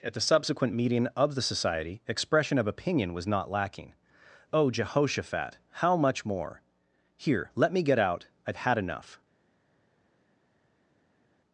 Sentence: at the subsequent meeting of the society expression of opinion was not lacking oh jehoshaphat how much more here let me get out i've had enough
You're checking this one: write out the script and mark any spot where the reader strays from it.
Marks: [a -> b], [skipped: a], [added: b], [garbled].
at the subsequent meeting of the society expression of opinion was not lacking oh jehoshaphat how much more here let me get out i've had enough